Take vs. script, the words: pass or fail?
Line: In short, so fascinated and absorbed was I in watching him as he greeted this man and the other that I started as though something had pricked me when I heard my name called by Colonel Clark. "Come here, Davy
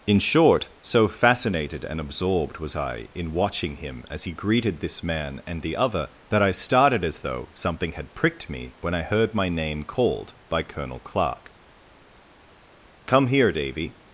pass